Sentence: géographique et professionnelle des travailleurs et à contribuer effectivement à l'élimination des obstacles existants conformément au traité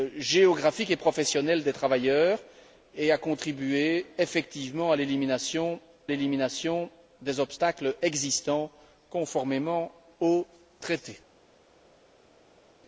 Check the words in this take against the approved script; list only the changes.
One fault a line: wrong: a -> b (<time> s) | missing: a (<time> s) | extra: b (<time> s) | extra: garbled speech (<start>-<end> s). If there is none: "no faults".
extra: l'élimination (6.1 s)